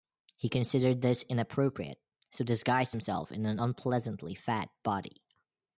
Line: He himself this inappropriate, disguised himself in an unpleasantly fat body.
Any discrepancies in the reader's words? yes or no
yes